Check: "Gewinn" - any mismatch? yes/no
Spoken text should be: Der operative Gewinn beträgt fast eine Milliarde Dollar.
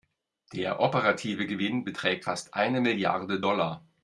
no